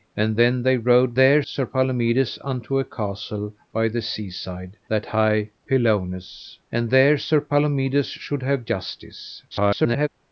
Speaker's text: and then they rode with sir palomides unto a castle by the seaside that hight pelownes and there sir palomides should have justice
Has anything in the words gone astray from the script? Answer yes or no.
yes